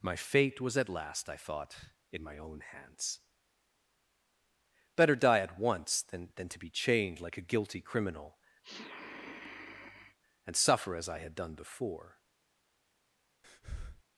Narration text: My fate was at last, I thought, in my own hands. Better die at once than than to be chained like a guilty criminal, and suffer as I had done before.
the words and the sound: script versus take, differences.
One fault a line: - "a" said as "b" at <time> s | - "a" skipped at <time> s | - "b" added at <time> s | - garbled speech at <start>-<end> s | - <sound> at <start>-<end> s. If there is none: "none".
- sniff at 8.6-10.2 s
- breath at 13.4-14.0 s